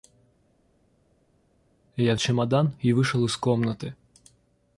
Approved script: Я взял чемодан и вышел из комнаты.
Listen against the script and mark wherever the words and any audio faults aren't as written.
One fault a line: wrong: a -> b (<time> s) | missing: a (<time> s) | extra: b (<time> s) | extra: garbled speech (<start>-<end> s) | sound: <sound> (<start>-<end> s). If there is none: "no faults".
missing: взял (2.2 s)